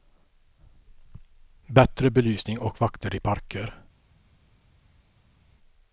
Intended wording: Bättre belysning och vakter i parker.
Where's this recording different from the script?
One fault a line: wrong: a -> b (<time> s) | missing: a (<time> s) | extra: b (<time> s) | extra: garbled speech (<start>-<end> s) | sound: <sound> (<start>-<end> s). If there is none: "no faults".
no faults